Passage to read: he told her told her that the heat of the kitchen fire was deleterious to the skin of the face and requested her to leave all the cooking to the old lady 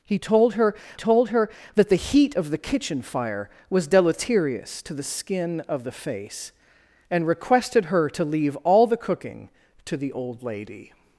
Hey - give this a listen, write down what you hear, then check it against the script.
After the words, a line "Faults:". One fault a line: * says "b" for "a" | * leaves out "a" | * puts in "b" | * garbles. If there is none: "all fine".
he told her told her that the heat of the kitchen fire was deleterious to the skin of the face and requested her to leave all the cooking to the old lady
Faults:
all fine